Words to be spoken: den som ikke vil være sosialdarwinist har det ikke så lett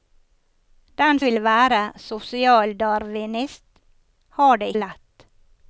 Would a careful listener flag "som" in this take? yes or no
yes